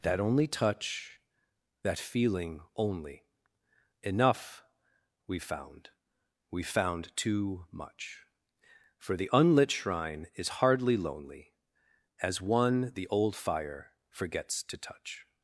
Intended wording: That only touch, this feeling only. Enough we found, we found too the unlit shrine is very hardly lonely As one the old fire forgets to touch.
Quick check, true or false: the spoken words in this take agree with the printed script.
false